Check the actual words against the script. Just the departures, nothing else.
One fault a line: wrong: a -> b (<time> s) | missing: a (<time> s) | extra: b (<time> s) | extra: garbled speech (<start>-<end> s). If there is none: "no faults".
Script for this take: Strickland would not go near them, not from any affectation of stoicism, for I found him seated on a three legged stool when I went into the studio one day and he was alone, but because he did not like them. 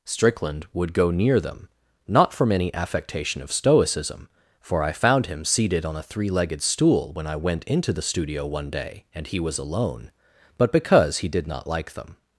missing: not (0.9 s)